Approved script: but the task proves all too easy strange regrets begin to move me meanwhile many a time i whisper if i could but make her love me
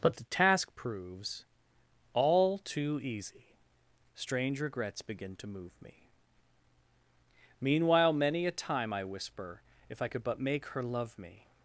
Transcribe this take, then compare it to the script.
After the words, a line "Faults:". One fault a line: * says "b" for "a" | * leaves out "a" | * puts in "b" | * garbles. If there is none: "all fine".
but the task proves all too easy strange regrets begin to move me meanwhile many a time i whisper if i could but make her love me
Faults:
all fine